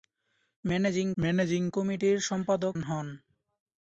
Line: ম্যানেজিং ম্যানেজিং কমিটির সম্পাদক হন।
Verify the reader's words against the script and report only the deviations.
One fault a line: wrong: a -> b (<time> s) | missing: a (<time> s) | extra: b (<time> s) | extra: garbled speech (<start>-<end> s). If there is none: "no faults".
no faults